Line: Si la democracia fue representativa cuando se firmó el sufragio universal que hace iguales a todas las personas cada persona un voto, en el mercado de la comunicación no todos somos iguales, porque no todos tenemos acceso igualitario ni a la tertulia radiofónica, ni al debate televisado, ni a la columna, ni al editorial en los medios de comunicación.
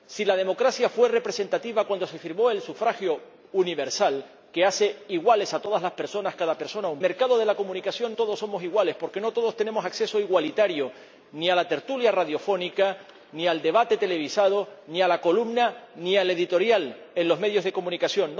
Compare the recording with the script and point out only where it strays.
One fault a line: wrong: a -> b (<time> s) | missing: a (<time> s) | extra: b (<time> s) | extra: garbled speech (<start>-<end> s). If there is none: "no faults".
missing: voto en el (7.0 s)
missing: no (8.2 s)